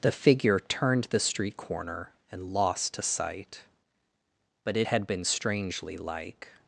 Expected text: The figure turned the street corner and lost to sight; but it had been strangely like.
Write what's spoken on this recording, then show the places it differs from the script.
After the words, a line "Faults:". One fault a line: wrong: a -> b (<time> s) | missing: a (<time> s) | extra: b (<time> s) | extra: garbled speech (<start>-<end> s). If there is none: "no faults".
The figure turned the street corner and lost to sight; but it had been strangely like.
Faults:
no faults